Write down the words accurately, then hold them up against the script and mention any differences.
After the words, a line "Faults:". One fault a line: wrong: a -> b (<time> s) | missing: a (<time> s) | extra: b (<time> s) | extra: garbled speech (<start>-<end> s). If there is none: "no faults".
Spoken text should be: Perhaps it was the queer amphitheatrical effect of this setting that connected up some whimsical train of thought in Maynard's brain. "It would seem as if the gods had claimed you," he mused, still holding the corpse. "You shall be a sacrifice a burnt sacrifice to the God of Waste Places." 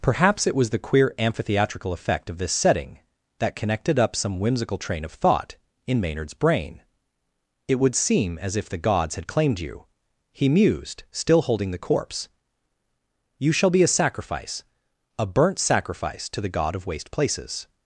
Perhaps it was the queer amphitheatrical effect of this setting that connected up some whimsical train of thought in Maynard's brain. "It would seem as if the gods had claimed you," he mused, still holding the corpse. "You shall be a sacrifice a burnt sacrifice to the God of Waste Places."
Faults:
no faults